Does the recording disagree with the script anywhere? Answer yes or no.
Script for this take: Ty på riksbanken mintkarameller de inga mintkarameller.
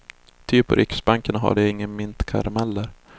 yes